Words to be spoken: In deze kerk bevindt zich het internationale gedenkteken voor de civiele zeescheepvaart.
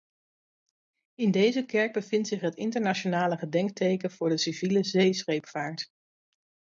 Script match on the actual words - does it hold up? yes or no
yes